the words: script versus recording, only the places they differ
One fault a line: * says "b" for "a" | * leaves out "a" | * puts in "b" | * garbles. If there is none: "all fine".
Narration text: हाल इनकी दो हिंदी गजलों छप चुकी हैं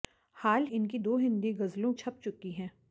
all fine